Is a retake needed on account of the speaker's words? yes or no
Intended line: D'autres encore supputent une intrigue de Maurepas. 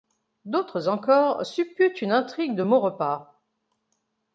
no